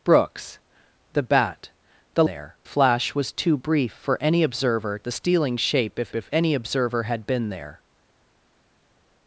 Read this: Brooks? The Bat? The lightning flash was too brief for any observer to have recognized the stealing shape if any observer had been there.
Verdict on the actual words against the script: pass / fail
fail